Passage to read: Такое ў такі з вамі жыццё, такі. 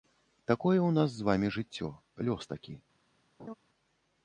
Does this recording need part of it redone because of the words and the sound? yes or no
yes